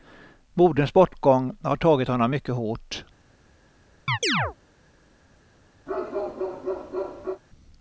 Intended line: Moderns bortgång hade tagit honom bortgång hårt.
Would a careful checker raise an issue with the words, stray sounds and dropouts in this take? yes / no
yes